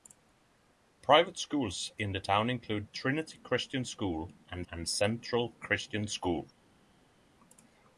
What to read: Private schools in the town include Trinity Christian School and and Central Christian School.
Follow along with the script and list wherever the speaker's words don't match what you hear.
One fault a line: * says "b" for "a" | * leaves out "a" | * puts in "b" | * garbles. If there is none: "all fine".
all fine